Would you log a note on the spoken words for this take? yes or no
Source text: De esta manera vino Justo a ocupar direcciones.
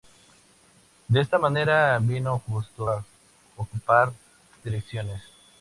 no